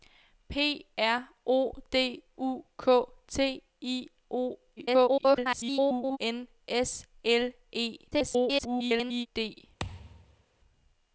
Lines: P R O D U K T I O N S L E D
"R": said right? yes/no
yes